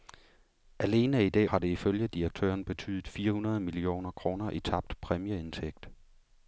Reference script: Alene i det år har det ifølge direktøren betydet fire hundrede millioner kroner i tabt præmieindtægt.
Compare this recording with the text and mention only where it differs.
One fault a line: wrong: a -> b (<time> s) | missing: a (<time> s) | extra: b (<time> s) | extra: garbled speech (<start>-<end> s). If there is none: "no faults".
missing: år (1.5 s)